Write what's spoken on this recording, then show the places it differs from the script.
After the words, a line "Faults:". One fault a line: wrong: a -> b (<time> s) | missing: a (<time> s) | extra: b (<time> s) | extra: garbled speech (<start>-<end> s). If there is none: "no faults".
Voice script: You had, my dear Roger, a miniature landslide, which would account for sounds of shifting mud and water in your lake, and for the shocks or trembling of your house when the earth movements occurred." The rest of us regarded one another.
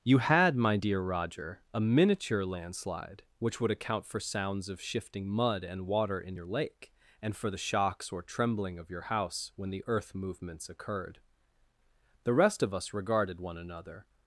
You had, my dear Roger, a miniature landslide, which would account for sounds of shifting mud and water in your lake, and for the shocks or trembling of your house when the earth movements occurred." The rest of us regarded one another.
Faults:
no faults